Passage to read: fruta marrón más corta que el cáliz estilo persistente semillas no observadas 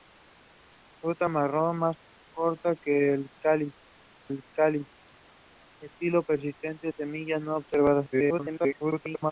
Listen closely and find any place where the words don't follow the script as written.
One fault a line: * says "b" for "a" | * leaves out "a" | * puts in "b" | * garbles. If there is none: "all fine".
* puts in "el cáliz"
* garbles